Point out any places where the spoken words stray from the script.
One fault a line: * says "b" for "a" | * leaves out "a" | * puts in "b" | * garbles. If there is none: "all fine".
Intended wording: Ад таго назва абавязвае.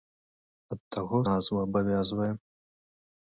all fine